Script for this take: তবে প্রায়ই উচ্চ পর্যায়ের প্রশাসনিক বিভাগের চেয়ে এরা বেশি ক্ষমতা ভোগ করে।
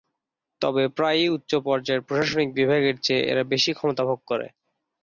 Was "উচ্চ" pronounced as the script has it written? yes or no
yes